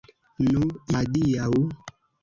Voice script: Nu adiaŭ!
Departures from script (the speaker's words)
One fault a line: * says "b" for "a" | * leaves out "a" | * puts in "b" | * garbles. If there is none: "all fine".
all fine